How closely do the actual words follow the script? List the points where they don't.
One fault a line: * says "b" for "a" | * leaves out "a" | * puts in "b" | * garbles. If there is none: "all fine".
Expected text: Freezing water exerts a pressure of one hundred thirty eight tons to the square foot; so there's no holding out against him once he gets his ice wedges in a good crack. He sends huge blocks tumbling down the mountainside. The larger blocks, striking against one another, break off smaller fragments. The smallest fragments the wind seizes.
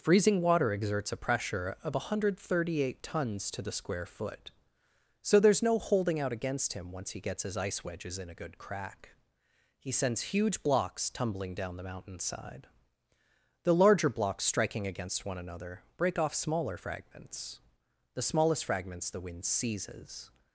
all fine